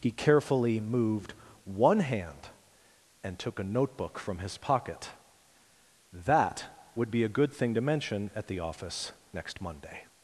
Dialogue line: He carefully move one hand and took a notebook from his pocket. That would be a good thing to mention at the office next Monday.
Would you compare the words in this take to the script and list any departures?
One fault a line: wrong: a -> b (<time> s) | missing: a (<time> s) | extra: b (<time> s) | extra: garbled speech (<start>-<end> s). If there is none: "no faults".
wrong: move -> moved (0.8 s)